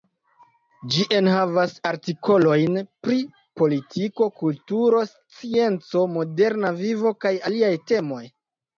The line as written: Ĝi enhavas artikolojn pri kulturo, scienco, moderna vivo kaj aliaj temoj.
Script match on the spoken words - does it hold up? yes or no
no